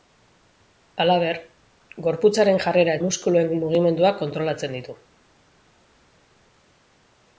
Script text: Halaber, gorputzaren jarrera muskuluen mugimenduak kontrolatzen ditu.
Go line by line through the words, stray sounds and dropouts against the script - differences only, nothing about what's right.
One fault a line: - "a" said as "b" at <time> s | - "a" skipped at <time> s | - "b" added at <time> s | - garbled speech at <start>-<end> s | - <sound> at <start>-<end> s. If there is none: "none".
none